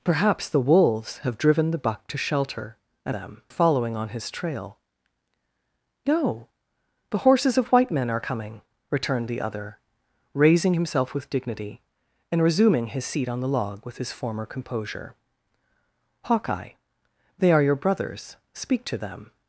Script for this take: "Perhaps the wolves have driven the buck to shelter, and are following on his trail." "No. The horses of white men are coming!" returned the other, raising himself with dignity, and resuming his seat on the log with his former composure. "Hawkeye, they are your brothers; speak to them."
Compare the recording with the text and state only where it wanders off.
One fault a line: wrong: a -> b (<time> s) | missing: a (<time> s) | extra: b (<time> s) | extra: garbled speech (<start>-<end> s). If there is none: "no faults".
wrong: are -> them (3.1 s)